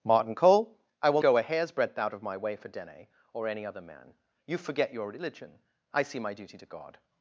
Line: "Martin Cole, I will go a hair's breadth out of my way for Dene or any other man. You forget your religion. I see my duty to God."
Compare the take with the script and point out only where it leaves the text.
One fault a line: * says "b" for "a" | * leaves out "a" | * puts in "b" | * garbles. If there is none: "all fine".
all fine